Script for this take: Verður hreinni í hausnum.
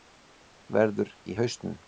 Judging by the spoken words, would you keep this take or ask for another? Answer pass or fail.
fail